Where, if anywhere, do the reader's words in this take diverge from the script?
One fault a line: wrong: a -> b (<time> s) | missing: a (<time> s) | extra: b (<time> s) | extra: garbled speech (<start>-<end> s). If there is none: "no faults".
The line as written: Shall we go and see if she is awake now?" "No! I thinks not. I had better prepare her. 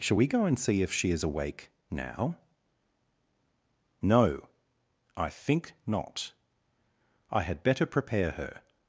wrong: thinks -> think (5.3 s)